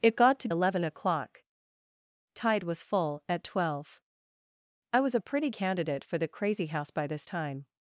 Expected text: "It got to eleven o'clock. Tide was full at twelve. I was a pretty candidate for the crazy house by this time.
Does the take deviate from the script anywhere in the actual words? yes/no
no